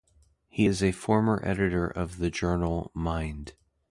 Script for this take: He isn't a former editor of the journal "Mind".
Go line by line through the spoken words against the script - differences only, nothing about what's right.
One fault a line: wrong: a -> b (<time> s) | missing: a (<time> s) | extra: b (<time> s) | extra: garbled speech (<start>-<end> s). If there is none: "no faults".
wrong: isn't -> is (0.6 s)